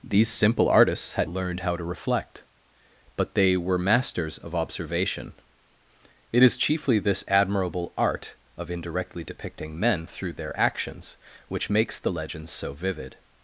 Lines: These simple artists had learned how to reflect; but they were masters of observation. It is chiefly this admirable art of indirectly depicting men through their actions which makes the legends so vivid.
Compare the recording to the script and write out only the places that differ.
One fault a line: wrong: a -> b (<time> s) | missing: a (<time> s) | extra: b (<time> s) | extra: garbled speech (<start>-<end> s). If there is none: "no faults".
no faults